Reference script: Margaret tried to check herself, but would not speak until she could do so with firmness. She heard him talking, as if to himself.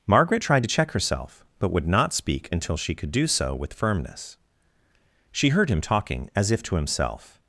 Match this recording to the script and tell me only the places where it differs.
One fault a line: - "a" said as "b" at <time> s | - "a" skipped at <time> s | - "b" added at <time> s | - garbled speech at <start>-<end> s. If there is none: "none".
none